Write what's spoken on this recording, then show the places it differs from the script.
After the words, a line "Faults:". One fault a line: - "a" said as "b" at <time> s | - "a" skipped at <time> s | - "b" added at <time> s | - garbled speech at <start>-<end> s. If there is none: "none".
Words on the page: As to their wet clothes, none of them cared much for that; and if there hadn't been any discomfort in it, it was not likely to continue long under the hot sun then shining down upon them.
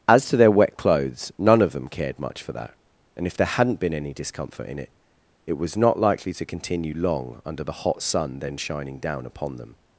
As to their wet clothes, none of them cared much for that; and if there hadn't been any discomfort in it, it was not likely to continue long under the hot sun then shining down upon them.
Faults:
none